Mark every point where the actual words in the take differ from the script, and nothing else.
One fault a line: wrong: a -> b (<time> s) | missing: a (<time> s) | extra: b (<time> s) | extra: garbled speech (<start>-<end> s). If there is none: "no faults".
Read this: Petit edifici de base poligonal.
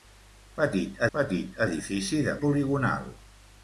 extra: petit (1.2 s)
missing: base (2.3 s)